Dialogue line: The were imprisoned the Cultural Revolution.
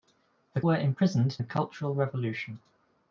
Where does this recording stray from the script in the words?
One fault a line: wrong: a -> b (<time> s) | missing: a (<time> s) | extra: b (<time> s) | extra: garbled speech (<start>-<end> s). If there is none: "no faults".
no faults